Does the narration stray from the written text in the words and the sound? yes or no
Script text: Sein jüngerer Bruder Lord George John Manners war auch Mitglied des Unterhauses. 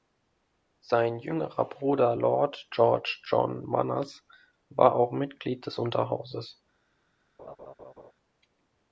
yes